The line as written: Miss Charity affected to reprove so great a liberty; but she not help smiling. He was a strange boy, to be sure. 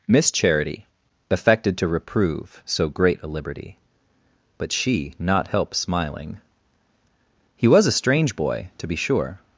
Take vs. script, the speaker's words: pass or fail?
pass